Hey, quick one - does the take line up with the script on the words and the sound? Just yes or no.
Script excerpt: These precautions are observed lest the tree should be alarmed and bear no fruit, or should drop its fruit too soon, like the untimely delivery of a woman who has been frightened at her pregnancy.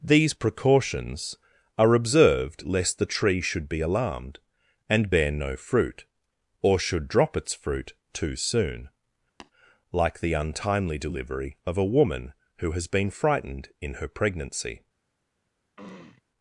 no